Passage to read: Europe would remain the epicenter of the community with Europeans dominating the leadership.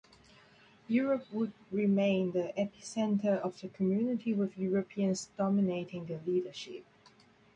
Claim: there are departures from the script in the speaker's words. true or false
false